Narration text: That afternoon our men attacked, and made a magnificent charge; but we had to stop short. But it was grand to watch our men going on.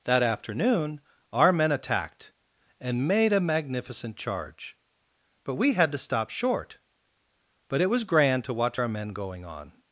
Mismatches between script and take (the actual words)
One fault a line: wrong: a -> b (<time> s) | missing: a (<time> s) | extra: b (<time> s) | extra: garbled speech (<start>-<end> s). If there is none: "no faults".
no faults